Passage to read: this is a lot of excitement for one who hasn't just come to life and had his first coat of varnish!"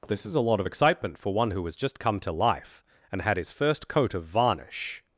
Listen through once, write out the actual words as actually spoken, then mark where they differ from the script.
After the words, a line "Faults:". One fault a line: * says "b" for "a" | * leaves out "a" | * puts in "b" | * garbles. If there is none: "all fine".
this is a lot of excitement for one who has just come to life and had his first coat of varnish!"
Faults:
* says "has" for "hasn't"